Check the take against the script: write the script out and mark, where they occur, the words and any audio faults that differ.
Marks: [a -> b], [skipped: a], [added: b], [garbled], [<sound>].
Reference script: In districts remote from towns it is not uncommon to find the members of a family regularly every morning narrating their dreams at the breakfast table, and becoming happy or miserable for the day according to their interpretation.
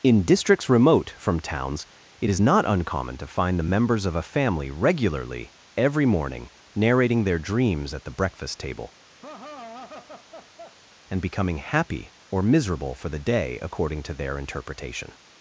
In districts remote from towns it is not uncommon to find the members of a family regularly every morning narrating their dreams at the breakfast table, [laugh] and becoming happy or miserable for the day according to their interpretation.